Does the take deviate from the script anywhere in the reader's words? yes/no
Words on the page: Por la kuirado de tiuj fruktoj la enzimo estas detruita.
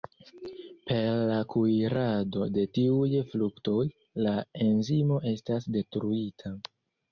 yes